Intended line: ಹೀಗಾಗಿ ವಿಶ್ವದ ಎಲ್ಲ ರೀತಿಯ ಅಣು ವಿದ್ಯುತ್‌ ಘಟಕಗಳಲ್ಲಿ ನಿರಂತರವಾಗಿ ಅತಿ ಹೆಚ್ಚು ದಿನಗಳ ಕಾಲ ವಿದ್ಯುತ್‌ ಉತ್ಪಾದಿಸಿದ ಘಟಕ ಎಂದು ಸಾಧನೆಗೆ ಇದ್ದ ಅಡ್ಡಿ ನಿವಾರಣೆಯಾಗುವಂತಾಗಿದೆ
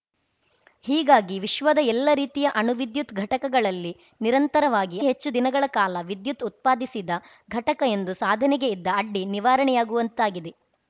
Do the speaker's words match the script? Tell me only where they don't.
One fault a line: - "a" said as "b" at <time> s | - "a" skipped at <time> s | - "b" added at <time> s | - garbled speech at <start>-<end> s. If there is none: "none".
- "ಅತಿ" skipped at 5.0 s